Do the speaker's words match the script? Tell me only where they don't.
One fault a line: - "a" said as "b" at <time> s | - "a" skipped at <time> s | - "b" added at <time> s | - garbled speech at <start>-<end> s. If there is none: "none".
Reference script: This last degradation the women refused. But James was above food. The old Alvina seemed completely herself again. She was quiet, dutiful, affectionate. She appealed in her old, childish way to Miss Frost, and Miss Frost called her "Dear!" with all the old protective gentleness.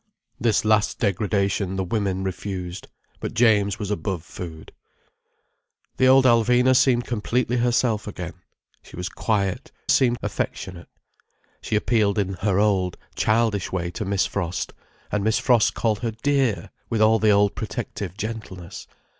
- "dutiful" said as "seemed" at 9.9 s